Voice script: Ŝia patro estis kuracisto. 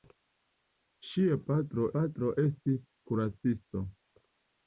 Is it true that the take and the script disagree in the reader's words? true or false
true